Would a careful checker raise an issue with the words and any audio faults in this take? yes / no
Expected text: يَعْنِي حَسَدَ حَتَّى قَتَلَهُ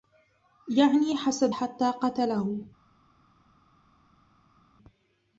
no